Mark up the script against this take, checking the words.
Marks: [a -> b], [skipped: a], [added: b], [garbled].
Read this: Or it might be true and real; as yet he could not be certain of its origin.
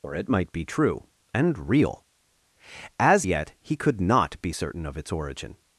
Or it might be true and real; as yet he could not be certain of its origin.